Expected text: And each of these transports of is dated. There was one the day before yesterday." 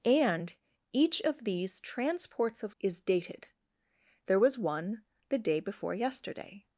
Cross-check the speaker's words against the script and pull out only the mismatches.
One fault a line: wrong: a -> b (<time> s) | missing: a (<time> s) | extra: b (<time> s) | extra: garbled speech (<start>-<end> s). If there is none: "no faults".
no faults